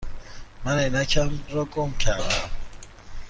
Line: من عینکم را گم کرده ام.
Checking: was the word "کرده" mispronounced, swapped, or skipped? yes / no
no